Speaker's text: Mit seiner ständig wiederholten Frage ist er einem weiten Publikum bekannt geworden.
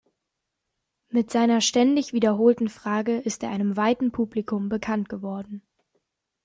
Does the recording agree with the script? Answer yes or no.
yes